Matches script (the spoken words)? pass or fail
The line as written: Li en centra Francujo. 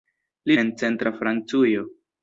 pass